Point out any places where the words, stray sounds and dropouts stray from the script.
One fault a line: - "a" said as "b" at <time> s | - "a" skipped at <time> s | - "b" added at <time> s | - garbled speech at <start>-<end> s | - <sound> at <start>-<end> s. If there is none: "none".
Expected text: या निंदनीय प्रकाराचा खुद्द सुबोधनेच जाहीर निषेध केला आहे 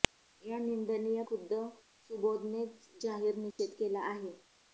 - "प्रकाराचा" skipped at 1.2 s
- dropout at 3.5-3.6 s